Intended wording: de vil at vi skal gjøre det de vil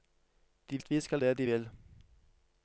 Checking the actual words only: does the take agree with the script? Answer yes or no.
no